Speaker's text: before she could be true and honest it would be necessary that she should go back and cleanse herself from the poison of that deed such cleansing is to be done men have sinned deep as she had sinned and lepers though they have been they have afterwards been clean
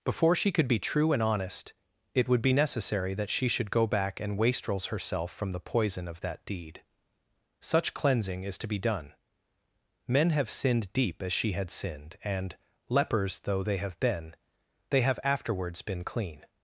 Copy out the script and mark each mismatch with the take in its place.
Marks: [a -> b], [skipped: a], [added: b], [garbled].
before she could be true and honest it would be necessary that she should go back and [cleanse -> wastrels] herself from the poison of that deed such cleansing is to be done men have sinned deep as she had sinned and lepers though they have been they have afterwards been clean